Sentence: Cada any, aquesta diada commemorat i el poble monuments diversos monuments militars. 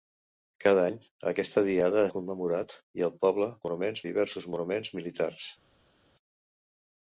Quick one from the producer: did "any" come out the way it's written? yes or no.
yes